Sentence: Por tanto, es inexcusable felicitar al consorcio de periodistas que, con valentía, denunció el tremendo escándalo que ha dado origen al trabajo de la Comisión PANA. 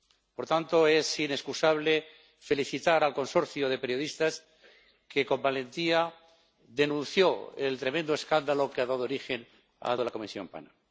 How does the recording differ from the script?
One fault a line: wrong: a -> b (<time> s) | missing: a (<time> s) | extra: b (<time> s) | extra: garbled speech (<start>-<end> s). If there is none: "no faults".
missing: trabajo (10.0 s)